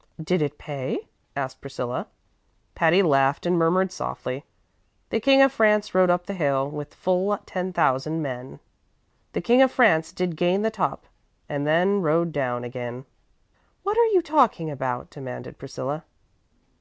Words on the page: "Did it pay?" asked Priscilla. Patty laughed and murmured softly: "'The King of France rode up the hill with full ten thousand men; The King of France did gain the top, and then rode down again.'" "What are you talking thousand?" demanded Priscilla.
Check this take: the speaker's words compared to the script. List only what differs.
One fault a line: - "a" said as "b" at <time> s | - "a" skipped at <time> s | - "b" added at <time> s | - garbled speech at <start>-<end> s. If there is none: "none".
- "thousand" said as "about" at 14.7 s